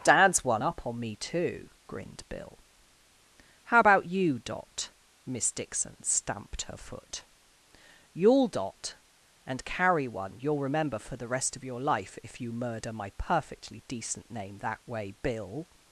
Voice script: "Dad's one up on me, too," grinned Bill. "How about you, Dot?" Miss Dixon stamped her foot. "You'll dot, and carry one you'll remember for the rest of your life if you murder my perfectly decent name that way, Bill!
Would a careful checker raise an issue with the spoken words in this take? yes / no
no